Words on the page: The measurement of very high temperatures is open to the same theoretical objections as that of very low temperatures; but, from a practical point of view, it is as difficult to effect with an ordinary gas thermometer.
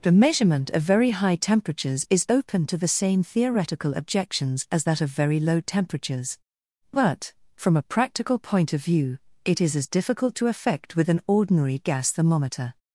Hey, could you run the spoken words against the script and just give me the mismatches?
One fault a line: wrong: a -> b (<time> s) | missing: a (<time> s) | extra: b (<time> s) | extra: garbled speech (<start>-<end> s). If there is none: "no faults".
no faults